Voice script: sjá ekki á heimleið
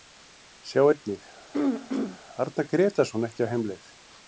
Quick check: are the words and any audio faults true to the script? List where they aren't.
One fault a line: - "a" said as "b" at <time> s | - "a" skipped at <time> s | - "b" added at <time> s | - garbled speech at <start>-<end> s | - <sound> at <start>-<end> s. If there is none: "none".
- "einnig arnar grétarsson" added at 0.9 s
- throat clearing at 1.5-2.2 s